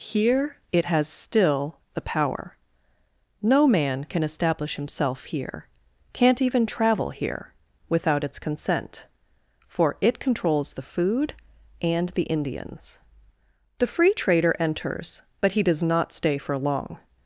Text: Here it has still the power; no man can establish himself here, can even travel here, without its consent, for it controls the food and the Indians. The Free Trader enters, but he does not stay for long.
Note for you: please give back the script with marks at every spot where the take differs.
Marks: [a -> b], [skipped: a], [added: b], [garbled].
Here it has still the power; no man can establish himself here, [can -> can't] even travel here, without its consent, for it controls the food and the Indians. The Free Trader enters, but he does not stay for long.